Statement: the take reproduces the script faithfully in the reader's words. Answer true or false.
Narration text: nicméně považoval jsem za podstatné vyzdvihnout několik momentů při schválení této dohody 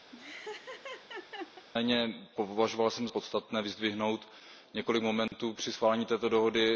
false